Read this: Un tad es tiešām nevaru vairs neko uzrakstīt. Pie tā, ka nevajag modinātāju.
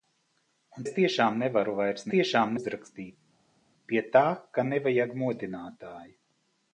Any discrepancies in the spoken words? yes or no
yes